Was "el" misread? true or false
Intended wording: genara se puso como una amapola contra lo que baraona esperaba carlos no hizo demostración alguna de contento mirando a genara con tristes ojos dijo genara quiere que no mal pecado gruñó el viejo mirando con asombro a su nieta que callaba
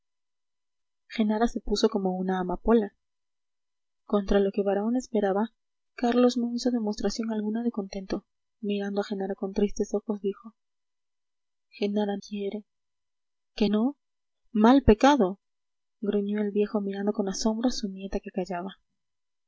false